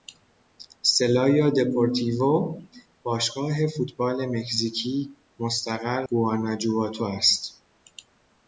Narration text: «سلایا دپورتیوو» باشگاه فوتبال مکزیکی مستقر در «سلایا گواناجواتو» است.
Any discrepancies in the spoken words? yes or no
yes